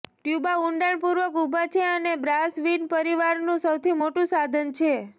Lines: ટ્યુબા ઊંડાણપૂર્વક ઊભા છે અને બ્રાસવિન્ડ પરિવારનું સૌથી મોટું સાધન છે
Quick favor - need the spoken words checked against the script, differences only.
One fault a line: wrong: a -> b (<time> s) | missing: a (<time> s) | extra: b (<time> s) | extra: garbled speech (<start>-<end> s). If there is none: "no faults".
no faults